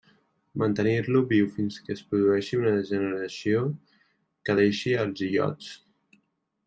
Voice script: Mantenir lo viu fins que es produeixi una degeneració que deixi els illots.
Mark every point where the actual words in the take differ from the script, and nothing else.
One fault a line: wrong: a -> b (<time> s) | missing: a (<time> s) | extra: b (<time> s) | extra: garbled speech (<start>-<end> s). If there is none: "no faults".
no faults